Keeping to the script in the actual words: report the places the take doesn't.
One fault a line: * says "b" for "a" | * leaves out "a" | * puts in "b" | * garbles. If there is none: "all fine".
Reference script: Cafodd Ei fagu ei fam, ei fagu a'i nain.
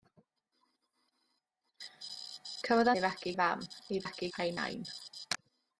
all fine